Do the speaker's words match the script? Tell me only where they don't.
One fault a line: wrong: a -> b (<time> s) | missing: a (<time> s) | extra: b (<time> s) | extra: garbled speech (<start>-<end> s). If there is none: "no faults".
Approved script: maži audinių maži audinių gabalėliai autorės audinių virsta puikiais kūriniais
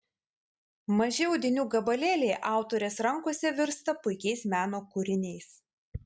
missing: maži audinių (1.6 s)
wrong: audinių -> rankose (3.1 s)
extra: meno (4.5 s)